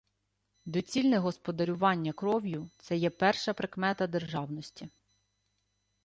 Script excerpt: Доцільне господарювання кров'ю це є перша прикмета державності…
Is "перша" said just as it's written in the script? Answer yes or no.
yes